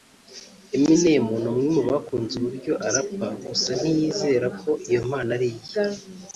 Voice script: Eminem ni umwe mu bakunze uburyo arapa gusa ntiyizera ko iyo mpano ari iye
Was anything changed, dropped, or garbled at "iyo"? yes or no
no